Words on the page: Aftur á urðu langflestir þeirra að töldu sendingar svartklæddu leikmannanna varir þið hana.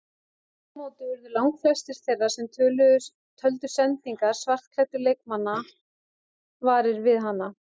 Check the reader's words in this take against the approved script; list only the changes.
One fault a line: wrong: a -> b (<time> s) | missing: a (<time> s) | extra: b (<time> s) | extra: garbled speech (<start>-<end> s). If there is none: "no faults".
extra: móti (0.8 s)
wrong: að -> sem (2.4 s)
wrong: þið -> við (7.1 s)